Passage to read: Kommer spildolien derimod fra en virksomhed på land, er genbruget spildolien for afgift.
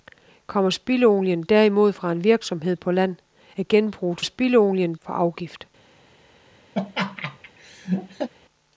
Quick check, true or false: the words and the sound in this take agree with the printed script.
false